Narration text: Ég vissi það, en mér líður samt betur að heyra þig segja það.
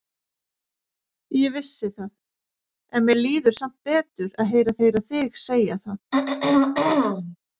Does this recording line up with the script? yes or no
no